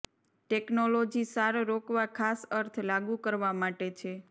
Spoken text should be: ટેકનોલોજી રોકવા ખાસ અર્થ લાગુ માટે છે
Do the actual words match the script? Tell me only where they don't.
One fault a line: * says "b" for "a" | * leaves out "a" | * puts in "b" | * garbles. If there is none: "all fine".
* puts in "સાર"
* puts in "કરવા"